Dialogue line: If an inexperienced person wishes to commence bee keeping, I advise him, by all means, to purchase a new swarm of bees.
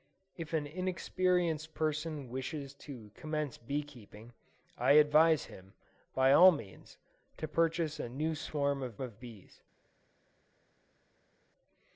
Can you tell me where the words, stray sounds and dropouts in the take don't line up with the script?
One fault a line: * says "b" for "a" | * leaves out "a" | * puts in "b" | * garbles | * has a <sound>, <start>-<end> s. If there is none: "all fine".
* puts in "of"